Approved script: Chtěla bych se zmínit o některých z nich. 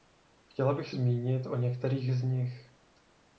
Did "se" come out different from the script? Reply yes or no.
yes